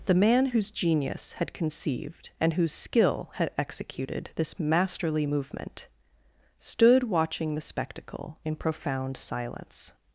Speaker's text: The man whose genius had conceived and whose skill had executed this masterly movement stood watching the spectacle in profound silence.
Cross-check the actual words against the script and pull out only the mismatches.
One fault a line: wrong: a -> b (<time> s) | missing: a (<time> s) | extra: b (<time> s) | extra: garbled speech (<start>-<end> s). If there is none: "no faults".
no faults